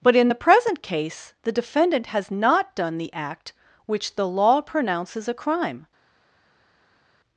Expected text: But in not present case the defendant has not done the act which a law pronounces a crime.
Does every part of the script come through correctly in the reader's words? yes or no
no